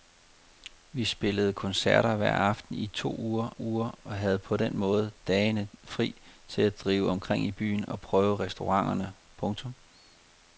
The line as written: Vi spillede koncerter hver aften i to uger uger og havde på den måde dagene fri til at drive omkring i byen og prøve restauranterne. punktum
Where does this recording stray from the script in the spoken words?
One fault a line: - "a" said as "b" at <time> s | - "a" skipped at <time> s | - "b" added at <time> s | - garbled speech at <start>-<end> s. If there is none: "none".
none